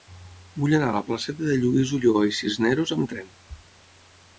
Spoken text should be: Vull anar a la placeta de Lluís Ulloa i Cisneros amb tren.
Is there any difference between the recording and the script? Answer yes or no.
no